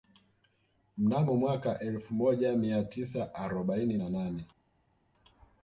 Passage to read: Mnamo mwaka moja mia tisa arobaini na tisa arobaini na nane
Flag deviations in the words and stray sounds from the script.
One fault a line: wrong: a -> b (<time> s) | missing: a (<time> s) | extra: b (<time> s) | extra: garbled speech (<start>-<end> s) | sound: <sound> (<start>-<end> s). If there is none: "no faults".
extra: elfu (1.8 s)
missing: tisa arobaini na (4.1 s)